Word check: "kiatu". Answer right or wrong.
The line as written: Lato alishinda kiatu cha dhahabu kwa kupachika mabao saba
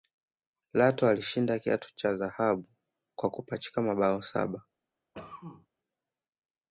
right